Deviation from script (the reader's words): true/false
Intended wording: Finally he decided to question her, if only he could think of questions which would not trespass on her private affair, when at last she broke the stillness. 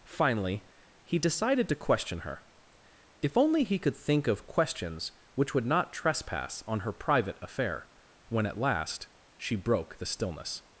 false